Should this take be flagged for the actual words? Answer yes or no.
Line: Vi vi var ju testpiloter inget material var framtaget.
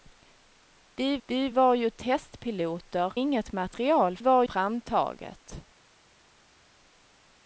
no